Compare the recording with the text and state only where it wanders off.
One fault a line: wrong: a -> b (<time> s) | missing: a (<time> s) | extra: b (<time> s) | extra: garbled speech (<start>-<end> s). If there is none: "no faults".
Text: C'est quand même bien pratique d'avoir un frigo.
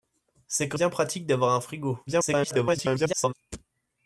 missing: même (0.8 s)
extra: garbled speech (2.1-3.3 s)